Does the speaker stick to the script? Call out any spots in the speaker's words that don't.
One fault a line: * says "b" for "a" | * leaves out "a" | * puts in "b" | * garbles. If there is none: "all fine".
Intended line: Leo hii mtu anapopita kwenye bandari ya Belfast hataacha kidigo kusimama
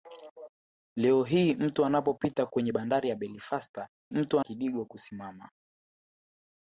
* says "mtu" for "hataacha"